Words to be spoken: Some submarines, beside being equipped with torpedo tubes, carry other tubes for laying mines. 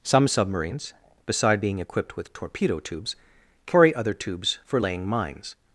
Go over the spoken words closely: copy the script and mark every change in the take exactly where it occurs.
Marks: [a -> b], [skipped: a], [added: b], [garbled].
Some submarines, beside being equipped with torpedo tubes, carry other tubes for laying mines.